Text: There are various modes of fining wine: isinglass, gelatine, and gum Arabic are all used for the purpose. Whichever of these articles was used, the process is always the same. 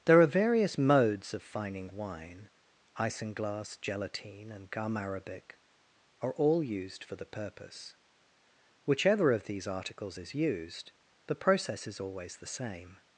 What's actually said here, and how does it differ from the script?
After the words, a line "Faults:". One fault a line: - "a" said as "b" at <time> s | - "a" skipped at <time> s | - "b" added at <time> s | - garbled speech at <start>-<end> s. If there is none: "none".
There are various modes of fining wine: isinglass, gelatine, and gum Arabic are all used for the purpose. Whichever of these articles is used, the process is always the same.
Faults:
- "was" said as "is" at 10.2 s